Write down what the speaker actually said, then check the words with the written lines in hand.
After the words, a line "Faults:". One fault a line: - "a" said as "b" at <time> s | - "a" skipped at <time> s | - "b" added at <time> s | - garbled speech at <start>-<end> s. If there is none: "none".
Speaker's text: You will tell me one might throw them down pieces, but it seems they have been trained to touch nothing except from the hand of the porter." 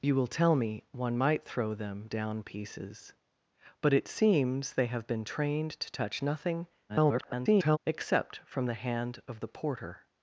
You will tell me one might throw them down pieces, but it seems they have been trained to touch nothing [garbled] except from the hand of the porter."
Faults:
- garbled speech at 6.9-7.8 s